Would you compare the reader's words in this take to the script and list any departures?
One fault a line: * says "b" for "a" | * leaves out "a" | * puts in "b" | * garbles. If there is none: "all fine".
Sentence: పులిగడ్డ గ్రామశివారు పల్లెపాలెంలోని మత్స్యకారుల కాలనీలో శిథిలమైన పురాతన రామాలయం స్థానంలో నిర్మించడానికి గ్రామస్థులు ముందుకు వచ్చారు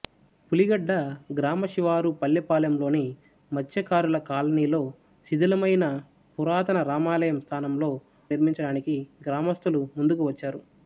all fine